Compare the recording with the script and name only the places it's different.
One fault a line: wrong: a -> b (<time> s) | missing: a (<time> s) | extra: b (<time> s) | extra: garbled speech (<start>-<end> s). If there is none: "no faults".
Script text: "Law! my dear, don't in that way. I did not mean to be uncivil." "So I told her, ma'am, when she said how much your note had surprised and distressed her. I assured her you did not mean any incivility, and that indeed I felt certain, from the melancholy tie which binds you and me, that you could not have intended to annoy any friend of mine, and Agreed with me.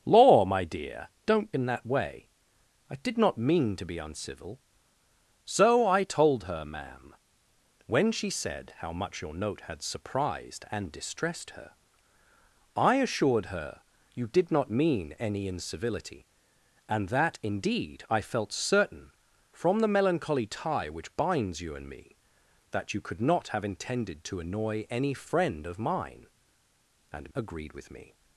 no faults